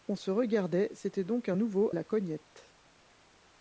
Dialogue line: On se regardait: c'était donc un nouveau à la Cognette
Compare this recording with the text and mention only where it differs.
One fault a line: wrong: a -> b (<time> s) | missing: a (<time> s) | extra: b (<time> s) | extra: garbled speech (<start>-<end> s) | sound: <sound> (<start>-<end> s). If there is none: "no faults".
missing: à (1.9 s)